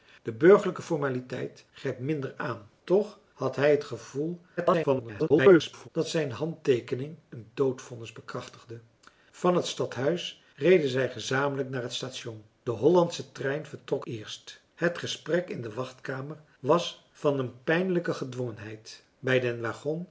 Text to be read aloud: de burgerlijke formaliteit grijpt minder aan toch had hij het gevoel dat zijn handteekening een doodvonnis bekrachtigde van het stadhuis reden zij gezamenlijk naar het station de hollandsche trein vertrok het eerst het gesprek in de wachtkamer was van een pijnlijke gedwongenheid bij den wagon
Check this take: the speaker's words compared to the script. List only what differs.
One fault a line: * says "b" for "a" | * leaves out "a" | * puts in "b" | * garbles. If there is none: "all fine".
* garbles
* leaves out "het"